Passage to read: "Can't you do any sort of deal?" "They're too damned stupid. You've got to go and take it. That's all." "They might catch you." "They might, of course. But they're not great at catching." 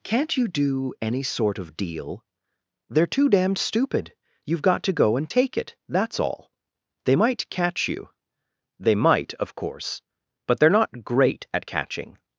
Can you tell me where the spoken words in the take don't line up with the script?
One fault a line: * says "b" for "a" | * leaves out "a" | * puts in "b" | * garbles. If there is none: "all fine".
all fine